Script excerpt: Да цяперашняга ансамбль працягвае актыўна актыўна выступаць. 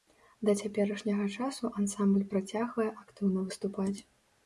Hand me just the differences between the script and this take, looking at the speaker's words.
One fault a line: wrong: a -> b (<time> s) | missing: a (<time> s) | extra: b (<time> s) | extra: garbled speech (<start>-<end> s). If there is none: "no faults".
extra: часу (1.4 s)
missing: актыўна (3.4 s)